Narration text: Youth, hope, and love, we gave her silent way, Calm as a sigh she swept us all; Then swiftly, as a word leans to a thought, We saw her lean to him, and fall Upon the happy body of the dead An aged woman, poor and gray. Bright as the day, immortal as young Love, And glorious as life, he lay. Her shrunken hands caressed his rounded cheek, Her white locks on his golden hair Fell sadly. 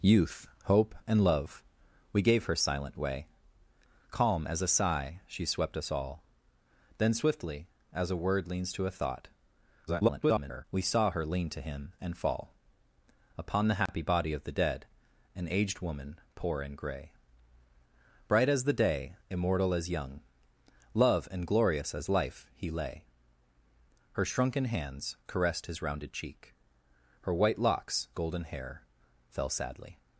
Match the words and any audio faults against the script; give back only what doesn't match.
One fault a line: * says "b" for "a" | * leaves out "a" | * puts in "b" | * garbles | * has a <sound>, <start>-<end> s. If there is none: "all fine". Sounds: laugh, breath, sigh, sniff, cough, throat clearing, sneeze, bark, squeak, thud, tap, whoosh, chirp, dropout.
* garbles
* has a dropout, 13.9-13.9 s
* leaves out "on his"